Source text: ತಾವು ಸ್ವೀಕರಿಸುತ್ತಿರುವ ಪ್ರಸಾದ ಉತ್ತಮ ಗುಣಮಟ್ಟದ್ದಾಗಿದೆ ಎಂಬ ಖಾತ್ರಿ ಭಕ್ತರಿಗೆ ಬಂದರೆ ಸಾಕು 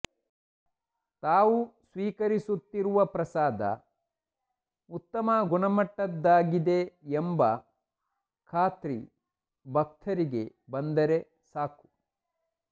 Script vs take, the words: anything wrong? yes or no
no